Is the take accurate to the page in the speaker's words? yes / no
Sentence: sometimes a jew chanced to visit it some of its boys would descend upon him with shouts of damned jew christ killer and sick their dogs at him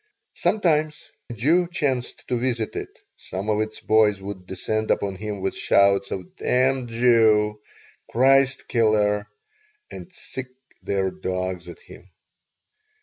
yes